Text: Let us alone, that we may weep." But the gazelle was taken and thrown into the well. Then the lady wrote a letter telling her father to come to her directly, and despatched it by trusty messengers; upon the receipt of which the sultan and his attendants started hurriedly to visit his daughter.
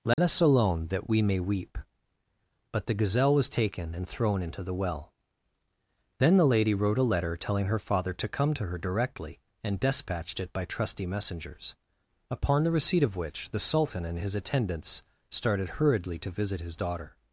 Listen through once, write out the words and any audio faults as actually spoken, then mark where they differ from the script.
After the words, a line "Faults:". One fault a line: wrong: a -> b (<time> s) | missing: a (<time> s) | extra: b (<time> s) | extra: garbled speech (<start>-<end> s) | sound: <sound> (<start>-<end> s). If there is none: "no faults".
Let us alone, that we may weep." But the gazelle was taken and thrown into the well. Then the lady wrote a letter telling her father to come to her directly, and despatched it by trusty messengers; upon the receipt of which the sultan and his attendants started hurriedly to visit his daughter.
Faults:
sound: dropout (0.1-0.2 s)